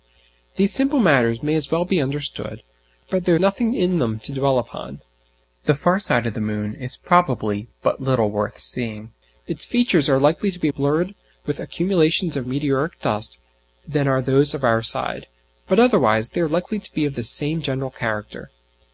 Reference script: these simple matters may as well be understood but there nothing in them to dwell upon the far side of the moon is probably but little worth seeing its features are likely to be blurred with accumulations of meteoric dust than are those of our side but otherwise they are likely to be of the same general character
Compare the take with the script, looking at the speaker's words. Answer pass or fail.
pass